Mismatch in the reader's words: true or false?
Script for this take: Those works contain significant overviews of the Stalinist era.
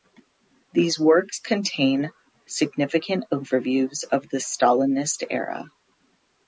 true